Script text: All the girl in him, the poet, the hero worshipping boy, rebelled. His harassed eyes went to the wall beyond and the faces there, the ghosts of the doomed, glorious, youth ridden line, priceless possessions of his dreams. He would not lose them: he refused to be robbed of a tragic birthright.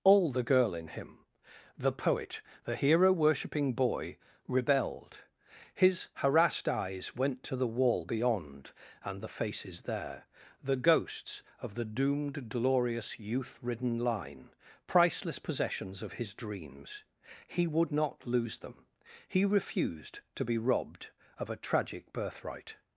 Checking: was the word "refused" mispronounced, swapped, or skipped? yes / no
no